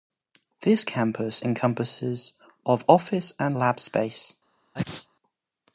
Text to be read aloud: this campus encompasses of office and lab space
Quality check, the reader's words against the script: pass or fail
pass